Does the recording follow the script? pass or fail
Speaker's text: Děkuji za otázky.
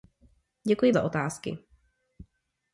pass